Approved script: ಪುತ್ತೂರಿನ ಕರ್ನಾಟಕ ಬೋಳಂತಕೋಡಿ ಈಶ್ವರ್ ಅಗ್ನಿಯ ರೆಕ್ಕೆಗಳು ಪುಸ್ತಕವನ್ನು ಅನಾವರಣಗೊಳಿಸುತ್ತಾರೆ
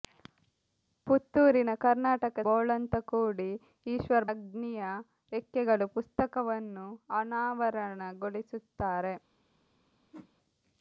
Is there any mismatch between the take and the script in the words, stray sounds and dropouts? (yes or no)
yes